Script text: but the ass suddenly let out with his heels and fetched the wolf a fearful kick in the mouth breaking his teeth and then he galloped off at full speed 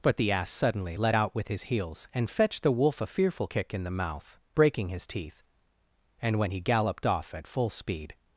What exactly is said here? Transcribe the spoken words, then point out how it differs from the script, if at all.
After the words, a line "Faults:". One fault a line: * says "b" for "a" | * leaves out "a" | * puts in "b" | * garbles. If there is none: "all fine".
but the ass suddenly let out with his heels and fetched the wolf a fearful kick in the mouth breaking his teeth and when he galloped off at full speed
Faults:
* says "when" for "then"